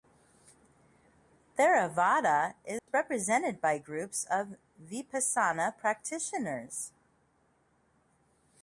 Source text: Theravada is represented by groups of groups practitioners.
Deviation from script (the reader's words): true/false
true